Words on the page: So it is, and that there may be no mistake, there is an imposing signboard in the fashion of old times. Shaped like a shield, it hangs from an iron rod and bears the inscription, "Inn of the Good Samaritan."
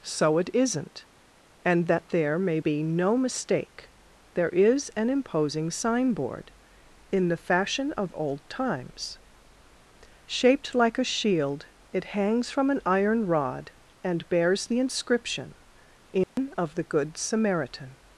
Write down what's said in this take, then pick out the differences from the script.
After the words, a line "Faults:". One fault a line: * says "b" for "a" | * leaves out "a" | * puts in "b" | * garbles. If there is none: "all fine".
So it isn't, and that there may be no mistake, there is an imposing signboard in the fashion of old times. Shaped like a shield, it hangs from an iron rod and bears the inscription, "Inn of the Good Samaritan."
Faults:
* says "isn't" for "is"